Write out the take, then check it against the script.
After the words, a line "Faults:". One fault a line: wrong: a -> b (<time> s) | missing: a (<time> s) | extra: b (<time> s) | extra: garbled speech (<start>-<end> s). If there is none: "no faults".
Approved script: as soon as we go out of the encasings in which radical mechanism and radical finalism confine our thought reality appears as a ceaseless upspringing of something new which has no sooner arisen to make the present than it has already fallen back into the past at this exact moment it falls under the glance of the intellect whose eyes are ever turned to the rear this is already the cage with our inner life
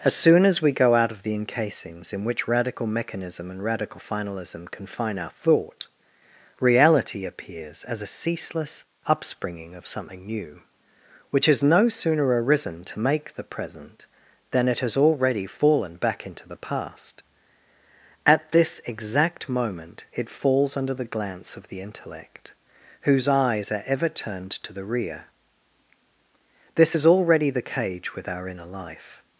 as soon as we go out of the encasings in which radical mechanism and radical finalism confine our thought reality appears as a ceaseless upspringing of something new which has no sooner arisen to make the present than it has already fallen back into the past at this exact moment it falls under the glance of the intellect whose eyes are ever turned to the rear this is already the cage with our inner life
Faults:
no faults